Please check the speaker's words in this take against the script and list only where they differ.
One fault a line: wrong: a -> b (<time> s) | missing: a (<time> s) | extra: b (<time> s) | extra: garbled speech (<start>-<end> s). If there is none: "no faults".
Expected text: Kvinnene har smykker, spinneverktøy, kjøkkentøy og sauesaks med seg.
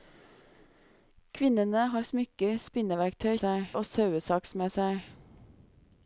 wrong: kjøkkentøy -> seg (3.4 s)